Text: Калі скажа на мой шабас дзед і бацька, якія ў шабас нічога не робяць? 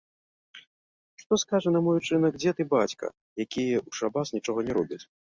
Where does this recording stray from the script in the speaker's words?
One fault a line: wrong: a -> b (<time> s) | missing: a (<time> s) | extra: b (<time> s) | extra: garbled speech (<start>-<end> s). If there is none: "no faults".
wrong: Калі -> Што (1.2 s)
wrong: шабас -> учынак (2.0 s)